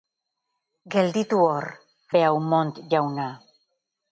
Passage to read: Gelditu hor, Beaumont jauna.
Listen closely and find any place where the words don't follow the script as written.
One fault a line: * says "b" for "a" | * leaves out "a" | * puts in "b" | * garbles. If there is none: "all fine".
all fine